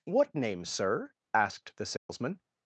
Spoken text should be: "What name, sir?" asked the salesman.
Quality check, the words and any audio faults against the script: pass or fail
fail